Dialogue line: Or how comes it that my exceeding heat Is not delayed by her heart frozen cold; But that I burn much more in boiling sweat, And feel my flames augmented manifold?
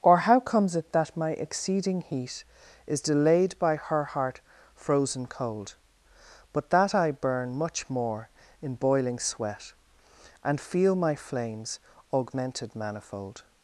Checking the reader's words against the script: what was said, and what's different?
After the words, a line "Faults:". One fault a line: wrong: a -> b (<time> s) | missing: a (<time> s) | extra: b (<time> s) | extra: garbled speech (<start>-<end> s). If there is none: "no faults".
Or how comes it that my exceeding heat Is delayed by her heart frozen cold; But that I burn much more in boiling sweat, And feel my flames augmented manifold?
Faults:
missing: not (3.0 s)